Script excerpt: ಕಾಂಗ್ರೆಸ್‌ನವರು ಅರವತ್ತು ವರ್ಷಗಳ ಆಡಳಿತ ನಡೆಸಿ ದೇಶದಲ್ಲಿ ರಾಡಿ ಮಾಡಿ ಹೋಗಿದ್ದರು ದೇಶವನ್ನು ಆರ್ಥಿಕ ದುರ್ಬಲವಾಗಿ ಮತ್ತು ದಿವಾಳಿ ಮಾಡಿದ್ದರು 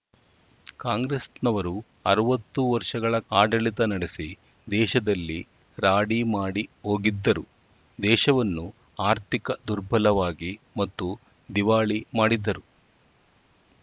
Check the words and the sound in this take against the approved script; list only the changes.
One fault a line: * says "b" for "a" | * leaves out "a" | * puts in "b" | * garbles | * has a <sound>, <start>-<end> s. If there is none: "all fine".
all fine